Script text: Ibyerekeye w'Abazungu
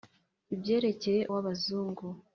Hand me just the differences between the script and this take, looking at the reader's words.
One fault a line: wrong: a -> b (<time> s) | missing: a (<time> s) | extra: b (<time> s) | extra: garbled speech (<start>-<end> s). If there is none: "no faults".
no faults